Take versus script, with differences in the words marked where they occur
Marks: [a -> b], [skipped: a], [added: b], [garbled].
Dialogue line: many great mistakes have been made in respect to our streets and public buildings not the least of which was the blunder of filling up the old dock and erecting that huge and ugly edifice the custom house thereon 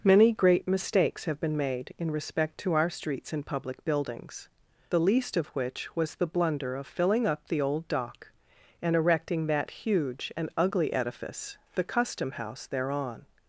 many great mistakes have been made in respect to our streets and public buildings [skipped: not] the least of which was the blunder of filling up the old dock and erecting that huge and ugly edifice the custom house thereon